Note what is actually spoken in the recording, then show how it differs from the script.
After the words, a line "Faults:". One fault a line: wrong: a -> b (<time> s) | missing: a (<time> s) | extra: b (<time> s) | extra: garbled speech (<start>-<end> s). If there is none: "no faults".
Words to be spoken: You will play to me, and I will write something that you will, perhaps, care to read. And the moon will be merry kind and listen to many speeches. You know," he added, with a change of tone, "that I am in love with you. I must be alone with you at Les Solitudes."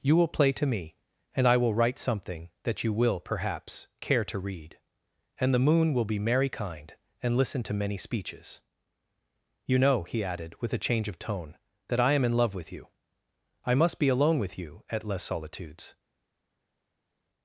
You will play to me, and I will write something that you will, perhaps, care to read. And the moon will be merry kind and listen to many speeches. You know," he added, with a change of tone, "that I am in love with you. I must be alone with you at Les Solitudes."
Faults:
no faults